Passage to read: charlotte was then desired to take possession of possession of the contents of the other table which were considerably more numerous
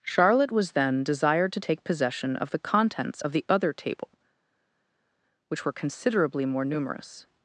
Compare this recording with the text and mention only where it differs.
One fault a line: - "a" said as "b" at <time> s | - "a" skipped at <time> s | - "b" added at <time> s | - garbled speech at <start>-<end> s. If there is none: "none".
- "possession of" skipped at 2.5 s